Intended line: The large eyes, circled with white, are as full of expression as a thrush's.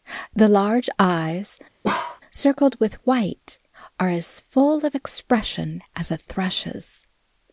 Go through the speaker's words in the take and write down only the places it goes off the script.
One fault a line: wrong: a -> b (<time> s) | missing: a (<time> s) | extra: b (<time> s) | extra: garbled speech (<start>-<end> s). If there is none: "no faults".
no faults